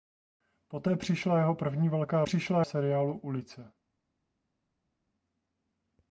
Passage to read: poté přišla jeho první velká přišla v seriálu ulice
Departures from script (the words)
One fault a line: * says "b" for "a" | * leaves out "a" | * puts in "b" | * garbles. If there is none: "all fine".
all fine